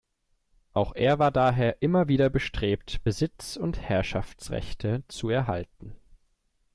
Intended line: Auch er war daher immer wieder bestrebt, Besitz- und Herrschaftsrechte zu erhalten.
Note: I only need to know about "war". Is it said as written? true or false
true